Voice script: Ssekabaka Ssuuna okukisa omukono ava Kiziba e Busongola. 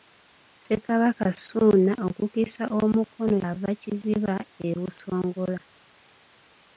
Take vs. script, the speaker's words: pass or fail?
pass